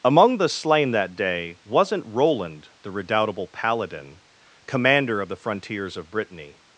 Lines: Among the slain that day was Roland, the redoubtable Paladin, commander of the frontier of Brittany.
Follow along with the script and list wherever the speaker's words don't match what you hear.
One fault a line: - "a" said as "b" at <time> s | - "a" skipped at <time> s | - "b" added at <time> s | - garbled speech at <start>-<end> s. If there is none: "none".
- "was" said as "wasn't" at 1.6 s
- "frontier" said as "frontiers" at 5.3 s